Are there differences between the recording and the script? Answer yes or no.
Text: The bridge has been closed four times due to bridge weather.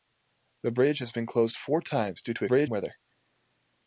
no